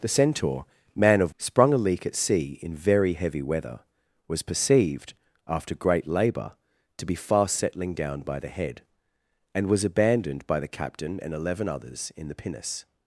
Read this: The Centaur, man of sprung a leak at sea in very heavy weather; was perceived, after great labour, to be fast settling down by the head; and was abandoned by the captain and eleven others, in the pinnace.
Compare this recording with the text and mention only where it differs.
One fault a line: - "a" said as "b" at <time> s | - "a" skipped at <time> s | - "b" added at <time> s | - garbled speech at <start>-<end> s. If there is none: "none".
none